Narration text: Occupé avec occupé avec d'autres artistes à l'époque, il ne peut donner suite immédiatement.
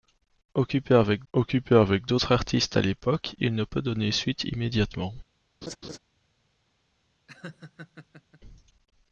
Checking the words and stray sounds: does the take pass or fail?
fail